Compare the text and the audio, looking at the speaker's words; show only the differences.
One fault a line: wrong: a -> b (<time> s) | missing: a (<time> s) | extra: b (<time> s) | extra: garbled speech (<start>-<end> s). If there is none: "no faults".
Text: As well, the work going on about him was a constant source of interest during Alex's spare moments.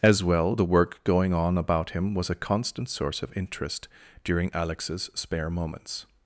no faults